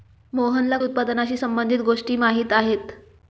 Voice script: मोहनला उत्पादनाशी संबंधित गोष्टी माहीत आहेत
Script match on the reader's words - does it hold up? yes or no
yes